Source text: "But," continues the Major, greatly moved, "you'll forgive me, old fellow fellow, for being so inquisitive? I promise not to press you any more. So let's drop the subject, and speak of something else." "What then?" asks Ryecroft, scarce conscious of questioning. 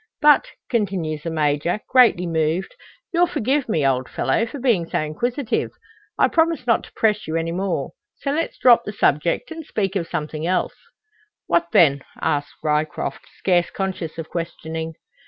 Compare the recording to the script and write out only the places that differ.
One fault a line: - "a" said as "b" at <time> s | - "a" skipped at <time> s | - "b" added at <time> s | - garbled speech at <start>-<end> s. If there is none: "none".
- "fellow" skipped at 4.5 s